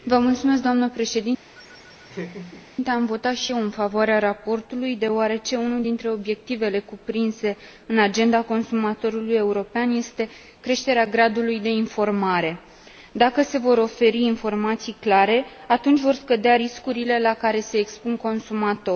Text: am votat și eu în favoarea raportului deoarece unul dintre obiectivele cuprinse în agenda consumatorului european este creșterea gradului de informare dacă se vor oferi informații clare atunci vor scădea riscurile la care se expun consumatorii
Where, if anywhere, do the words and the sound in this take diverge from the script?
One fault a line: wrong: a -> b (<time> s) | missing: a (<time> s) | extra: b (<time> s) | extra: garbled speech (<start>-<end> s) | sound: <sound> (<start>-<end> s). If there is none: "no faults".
sound: laugh (1.5-2.7 s)